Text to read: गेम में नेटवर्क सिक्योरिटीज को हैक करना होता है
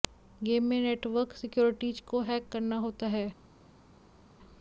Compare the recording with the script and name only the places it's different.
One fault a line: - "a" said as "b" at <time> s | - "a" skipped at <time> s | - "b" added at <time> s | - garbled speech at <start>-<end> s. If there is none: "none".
none